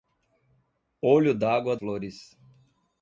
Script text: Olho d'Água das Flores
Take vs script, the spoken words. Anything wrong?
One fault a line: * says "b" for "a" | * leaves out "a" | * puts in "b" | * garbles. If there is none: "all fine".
* leaves out "das"